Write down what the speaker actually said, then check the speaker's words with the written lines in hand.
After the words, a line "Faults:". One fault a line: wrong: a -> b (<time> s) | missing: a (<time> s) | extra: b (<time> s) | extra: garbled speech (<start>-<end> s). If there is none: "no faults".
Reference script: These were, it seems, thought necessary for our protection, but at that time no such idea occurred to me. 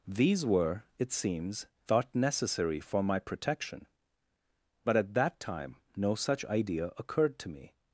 These were, it seems, thought necessary for my protection, but at that time no such idea occurred to me.
Faults:
wrong: our -> my (3.0 s)